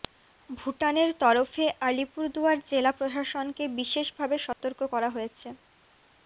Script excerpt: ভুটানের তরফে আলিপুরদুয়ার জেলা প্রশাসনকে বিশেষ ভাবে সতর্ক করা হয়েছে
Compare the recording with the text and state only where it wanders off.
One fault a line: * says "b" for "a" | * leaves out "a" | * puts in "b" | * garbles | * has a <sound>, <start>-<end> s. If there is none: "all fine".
* has a dropout, 4.5-4.6 s